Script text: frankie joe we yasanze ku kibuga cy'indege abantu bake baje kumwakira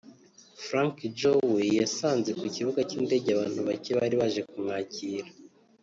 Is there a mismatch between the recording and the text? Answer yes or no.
yes